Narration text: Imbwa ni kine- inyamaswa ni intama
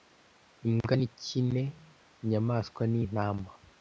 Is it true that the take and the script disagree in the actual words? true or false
false